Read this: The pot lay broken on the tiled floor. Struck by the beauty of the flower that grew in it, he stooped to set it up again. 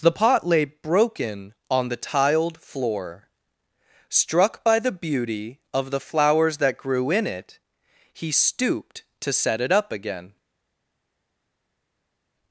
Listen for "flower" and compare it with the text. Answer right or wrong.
wrong